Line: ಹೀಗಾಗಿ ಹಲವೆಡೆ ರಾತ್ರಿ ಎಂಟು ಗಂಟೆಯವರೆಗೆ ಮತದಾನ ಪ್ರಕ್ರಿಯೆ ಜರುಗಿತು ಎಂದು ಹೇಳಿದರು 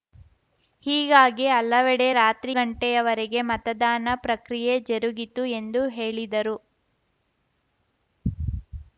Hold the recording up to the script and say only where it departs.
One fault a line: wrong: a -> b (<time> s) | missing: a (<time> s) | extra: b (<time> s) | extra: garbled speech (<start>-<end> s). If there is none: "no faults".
missing: ಎಂಟು (2.5 s)